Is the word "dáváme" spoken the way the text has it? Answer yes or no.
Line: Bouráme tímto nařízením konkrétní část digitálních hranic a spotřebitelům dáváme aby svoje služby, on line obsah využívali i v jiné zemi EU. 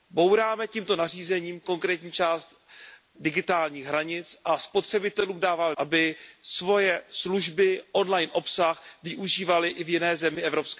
yes